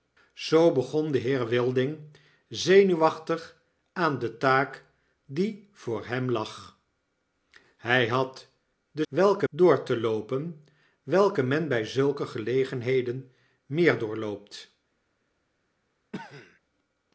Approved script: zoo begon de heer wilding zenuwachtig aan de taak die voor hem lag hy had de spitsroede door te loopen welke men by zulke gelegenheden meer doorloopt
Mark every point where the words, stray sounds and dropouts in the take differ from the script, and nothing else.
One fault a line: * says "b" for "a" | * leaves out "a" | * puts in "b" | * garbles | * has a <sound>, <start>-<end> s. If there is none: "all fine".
* says "welke" for "spitsroede"
* has a cough, 16.1-16.6 s